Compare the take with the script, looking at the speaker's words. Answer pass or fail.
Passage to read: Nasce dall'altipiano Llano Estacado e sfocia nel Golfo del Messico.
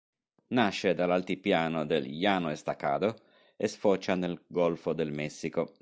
fail